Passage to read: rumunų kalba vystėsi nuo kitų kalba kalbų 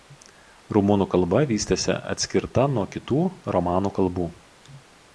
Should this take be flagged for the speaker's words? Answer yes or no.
yes